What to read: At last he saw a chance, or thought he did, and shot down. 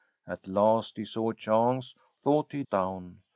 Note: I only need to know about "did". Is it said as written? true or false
false